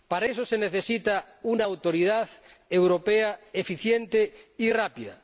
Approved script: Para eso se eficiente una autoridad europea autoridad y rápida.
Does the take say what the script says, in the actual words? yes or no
no